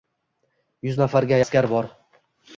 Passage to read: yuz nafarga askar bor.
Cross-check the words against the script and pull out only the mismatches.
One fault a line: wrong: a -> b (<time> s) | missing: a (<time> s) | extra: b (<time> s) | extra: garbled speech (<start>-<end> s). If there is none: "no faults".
no faults